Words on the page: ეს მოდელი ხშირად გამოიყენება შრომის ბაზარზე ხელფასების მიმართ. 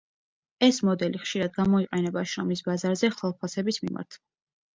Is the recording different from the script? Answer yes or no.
no